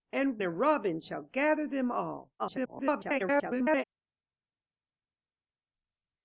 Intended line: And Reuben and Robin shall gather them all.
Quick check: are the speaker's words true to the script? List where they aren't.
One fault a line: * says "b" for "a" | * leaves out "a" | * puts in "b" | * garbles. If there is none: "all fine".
* leaves out "Reuben"
* garbles